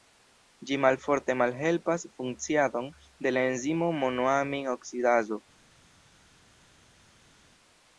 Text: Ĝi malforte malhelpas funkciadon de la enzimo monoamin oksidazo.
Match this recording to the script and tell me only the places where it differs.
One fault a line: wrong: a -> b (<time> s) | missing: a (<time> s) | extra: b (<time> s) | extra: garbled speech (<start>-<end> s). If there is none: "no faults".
no faults